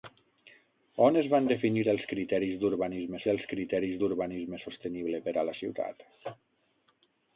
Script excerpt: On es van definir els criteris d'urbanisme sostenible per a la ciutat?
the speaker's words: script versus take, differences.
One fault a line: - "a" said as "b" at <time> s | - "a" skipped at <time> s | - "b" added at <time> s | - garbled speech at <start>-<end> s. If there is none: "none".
- "els criteris d'urbanisme" added at 3.3 s